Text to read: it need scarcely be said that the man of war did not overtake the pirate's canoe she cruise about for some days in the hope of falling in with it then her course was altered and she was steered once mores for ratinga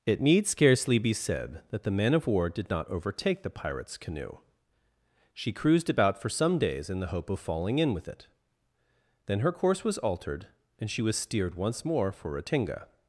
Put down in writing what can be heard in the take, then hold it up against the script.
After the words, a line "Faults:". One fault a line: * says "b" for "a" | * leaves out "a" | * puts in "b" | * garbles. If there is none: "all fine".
it need scarcely be said that the man of war did not overtake the pirate's canoe she cruised about for some days in the hope of falling in with it then her course was altered and she was steered once more for ratinga
Faults:
* says "cruised" for "cruise"
* says "more" for "mores"